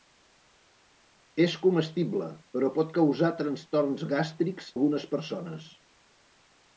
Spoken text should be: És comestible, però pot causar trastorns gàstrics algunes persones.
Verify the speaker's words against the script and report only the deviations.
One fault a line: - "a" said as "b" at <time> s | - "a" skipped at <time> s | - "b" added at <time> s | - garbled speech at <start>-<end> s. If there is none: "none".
none